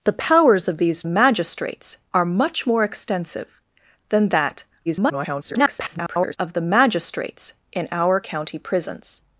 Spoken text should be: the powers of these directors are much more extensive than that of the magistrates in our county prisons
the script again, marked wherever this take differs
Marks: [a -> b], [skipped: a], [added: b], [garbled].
the powers of these [directors -> magistrates] are much more extensive than that [garbled] of the magistrates in our county prisons